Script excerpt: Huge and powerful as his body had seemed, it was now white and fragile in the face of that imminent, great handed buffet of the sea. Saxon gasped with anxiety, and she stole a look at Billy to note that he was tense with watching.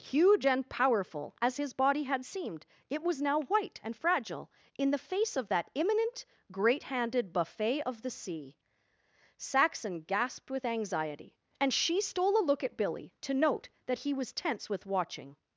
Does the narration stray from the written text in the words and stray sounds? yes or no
no